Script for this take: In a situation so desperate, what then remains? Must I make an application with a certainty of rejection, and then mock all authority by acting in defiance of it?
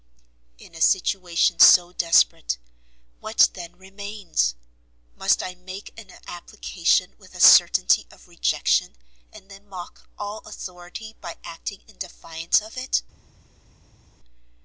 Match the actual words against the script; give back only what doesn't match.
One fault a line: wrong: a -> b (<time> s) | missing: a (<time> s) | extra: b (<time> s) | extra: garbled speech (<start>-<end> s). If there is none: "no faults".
no faults